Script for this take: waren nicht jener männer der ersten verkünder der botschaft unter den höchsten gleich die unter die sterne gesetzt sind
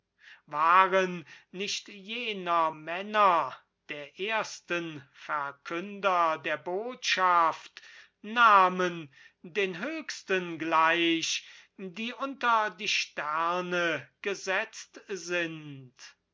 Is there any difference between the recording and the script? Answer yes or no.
yes